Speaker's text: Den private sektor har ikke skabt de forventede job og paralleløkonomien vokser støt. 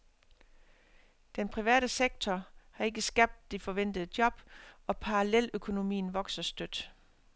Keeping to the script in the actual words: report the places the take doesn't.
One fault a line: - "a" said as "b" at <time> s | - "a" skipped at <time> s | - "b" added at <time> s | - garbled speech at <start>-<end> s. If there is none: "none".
none